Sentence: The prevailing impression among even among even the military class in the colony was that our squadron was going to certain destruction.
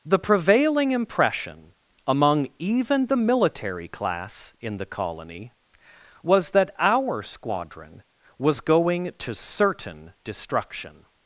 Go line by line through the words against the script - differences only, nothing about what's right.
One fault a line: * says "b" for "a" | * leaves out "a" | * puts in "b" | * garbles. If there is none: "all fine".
* leaves out "among even"